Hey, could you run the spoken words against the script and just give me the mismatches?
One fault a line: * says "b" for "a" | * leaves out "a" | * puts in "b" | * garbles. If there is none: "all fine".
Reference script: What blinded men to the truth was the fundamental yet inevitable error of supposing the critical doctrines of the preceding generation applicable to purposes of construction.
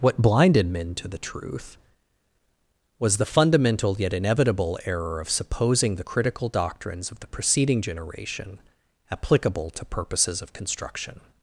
all fine